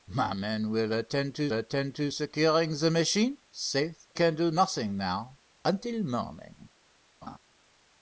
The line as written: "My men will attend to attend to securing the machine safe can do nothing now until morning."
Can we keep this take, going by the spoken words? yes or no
yes